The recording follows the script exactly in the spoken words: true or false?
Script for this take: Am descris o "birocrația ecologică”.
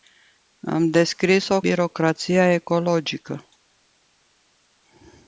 true